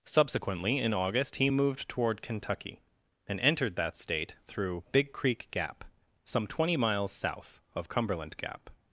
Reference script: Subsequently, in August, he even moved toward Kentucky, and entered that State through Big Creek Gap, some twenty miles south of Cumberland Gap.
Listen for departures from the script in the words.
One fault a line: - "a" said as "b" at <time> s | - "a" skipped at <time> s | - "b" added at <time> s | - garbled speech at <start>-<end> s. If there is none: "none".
- "even" skipped at 1.5 s